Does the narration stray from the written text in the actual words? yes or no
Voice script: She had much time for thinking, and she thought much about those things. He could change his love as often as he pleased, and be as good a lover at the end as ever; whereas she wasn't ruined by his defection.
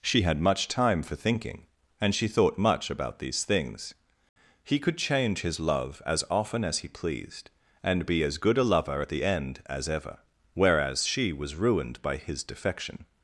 yes